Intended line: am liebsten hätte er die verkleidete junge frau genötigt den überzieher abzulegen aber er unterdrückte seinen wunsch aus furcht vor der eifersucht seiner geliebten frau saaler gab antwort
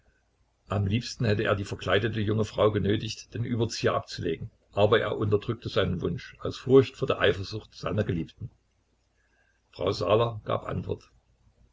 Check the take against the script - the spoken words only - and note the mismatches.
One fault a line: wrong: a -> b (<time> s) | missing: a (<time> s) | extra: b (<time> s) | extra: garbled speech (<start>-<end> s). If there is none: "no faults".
no faults